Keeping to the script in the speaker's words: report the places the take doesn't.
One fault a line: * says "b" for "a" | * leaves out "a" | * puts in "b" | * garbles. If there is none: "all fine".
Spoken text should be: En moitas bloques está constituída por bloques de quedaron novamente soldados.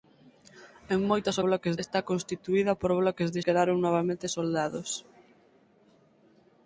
all fine